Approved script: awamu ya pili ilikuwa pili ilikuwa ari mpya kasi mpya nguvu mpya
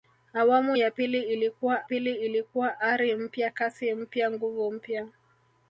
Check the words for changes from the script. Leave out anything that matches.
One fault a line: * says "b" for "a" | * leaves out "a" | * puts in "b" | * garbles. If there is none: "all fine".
all fine